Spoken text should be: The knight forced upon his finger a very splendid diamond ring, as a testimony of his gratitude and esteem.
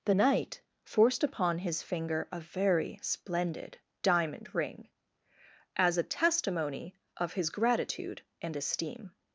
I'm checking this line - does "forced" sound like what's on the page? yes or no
yes